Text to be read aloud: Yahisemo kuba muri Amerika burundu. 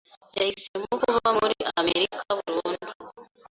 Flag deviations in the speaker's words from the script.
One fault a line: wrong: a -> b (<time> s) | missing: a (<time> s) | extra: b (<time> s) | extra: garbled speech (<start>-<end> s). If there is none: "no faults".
no faults